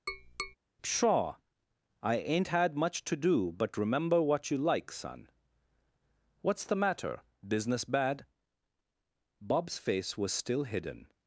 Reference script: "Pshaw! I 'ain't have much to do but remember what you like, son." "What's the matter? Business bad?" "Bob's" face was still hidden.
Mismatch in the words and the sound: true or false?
true